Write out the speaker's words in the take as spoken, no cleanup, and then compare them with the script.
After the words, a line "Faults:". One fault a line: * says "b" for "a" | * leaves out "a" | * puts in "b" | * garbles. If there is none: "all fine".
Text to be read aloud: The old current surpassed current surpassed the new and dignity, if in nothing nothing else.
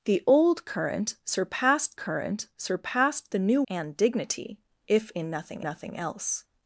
The old current surpassed current surpassed the new and dignity, if in nothing nothing else.
Faults:
all fine